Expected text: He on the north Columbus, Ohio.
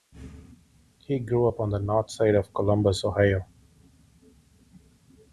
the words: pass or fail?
fail